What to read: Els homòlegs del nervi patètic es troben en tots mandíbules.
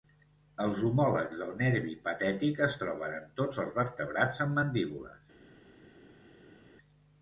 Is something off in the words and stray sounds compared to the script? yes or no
yes